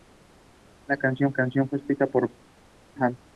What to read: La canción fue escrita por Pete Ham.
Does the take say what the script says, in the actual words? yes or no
no